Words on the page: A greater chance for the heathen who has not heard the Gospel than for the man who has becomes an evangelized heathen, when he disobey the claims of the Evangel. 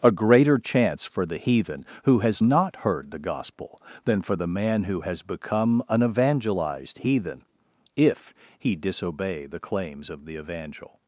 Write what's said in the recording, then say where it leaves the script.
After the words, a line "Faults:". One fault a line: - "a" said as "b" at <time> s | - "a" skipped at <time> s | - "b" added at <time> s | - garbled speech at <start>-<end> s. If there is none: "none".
A greater chance for the heathen who has not heard the Gospel than for the man who has become an evangelized heathen, if he disobey the claims of the Evangel.
Faults:
- "becomes" said as "become" at 5.2 s
- "when" said as "if" at 7.9 s